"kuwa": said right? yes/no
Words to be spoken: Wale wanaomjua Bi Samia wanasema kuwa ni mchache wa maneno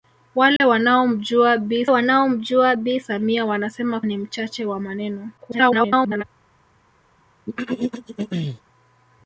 no